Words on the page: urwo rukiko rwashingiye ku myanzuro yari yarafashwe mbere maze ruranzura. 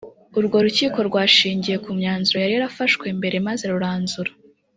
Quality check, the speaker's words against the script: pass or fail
pass